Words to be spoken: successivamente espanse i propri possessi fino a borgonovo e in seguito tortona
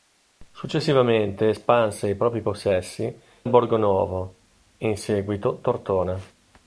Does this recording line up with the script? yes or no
no